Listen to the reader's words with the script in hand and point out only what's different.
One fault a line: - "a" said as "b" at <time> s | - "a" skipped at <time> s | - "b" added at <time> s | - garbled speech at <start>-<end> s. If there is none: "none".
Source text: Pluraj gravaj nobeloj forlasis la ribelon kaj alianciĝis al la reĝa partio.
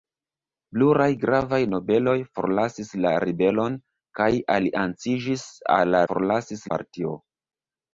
- "reĝa" said as "forlasis" at 6.1 s